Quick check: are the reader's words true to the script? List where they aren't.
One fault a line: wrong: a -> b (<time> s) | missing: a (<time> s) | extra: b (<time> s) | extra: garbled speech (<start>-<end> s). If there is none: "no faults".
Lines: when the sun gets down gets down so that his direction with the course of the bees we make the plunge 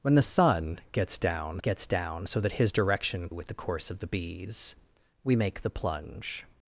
no faults